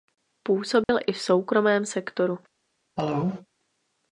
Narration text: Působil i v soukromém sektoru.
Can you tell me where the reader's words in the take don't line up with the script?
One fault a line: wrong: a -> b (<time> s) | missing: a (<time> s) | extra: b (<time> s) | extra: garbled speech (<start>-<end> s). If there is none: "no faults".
no faults